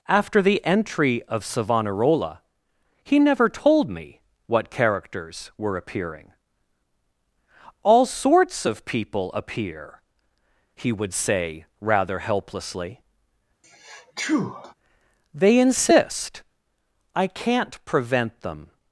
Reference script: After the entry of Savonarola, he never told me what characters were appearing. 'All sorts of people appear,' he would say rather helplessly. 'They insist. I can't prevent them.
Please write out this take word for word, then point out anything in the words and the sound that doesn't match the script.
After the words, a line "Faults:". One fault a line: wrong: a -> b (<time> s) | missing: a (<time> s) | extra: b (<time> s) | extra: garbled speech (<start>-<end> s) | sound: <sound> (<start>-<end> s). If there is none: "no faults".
After the entry of Savonarola, he never told me what characters were appearing. 'All sorts of people appear,' he would say rather helplessly. 'They insist. I can't prevent them.
Faults:
sound: sneeze (13.6-14.7 s)